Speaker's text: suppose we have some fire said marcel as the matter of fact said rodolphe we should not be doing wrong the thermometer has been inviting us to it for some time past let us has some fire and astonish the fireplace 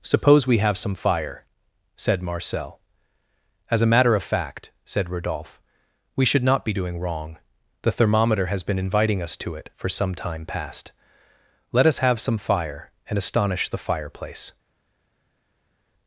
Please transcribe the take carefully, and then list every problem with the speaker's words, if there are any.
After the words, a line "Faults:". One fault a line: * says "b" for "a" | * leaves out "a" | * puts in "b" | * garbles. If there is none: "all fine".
suppose we have some fire said marcel as a matter of fact said rodolphe we should not be doing wrong the thermometer has been inviting us to it for some time past let us have some fire and astonish the fireplace
Faults:
* says "a" for "the"
* says "have" for "has"